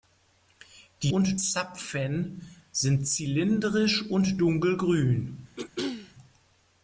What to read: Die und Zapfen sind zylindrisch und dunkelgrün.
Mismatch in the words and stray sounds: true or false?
true